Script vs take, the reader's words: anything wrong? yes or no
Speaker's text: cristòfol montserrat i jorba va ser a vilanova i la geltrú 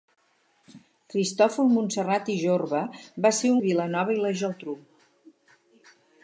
no